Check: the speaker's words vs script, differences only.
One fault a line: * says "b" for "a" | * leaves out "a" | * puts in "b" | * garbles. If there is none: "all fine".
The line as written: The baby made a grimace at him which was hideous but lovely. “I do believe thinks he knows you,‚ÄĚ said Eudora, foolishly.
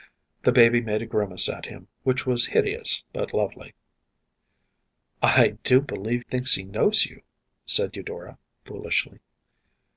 all fine